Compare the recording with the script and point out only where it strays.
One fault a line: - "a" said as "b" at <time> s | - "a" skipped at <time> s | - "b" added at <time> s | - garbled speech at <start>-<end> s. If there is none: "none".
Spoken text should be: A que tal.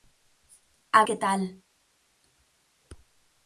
none